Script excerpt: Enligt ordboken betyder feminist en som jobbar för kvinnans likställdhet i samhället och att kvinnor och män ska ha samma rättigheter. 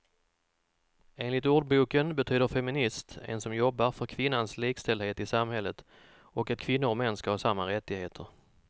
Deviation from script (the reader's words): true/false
false